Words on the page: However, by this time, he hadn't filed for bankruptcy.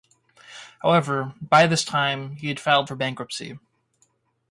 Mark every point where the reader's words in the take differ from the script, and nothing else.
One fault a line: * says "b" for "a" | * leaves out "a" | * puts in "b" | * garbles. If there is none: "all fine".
* says "had" for "hadn't"